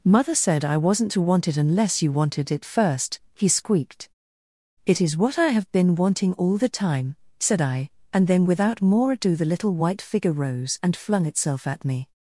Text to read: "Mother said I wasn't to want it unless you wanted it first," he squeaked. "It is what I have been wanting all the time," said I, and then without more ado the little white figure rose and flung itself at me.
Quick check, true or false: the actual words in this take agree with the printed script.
true